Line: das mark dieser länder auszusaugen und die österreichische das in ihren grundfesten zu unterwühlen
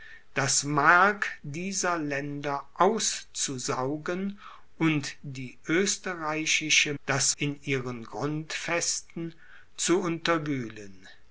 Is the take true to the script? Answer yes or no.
yes